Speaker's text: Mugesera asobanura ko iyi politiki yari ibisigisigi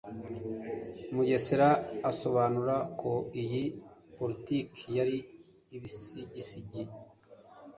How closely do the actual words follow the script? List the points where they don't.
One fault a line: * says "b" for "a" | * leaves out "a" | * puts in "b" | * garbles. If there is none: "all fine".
all fine